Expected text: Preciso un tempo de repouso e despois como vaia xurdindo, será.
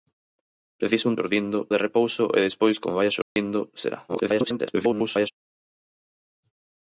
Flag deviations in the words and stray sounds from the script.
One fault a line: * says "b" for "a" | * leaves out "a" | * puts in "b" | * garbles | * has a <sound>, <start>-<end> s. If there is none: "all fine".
* says "xurdindo" for "tempo"
* has a dropout, 3.2-3.4 s
* garbles